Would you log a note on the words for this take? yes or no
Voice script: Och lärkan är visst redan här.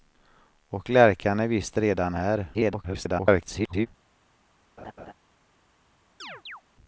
yes